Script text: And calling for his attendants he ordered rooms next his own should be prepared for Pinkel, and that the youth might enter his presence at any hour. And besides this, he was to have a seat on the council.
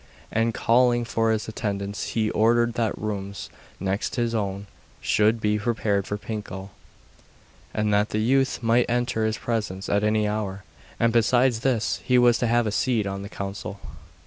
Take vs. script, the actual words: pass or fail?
fail